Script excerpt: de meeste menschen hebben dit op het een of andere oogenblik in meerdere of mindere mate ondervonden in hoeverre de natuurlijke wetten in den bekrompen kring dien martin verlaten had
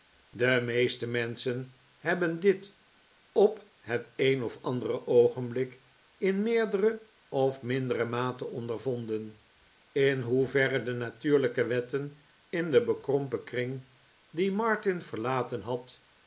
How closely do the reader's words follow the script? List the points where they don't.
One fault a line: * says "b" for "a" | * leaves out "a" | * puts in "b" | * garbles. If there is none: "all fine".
all fine